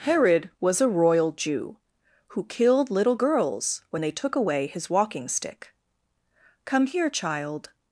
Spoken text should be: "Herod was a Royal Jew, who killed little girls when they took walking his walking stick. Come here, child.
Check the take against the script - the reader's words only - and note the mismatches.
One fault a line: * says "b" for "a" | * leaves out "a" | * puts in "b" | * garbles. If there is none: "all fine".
* says "away" for "walking"